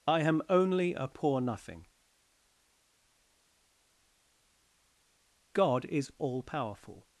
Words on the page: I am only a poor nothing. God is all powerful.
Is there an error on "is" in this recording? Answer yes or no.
no